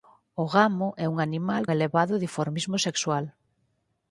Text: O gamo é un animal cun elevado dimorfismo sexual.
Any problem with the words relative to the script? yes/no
yes